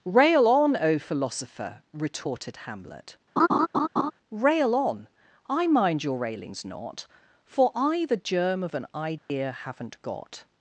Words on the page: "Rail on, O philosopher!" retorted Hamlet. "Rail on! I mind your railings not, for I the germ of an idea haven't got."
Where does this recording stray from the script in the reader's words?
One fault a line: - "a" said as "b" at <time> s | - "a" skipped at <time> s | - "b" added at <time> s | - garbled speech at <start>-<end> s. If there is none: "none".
none